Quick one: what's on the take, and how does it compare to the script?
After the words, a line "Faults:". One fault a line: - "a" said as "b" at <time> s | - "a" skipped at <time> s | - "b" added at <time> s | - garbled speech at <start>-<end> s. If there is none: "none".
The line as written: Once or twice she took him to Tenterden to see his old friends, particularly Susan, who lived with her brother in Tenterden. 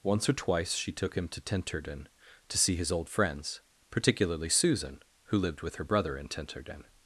Once or twice she took him to Tenterden to see his old friends, particularly Susan, who lived with her brother in Tenterden.
Faults:
none